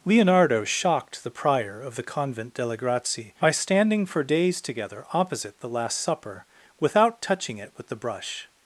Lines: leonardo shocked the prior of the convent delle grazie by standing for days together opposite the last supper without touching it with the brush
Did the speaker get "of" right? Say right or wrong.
right